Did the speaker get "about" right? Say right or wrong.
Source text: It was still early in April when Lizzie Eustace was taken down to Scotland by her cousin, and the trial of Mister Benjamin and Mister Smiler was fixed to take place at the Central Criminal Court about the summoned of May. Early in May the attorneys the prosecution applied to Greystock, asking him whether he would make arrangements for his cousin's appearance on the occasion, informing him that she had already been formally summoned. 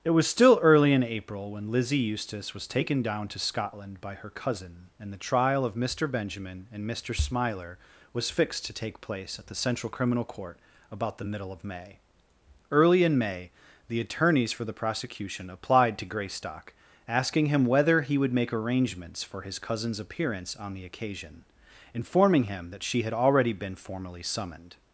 right